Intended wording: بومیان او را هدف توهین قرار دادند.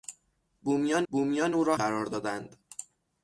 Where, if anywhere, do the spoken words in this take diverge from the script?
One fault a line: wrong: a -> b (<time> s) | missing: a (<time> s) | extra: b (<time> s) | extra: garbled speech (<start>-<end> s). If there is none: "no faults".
extra: بومیان (1.1 s)
missing: هدف توهین (1.8 s)